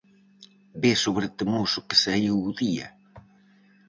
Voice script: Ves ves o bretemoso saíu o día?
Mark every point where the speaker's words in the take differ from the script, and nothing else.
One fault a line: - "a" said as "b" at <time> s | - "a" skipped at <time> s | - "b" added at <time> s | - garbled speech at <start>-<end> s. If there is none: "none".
- "ves" skipped at 1.0 s
- "que" added at 1.9 s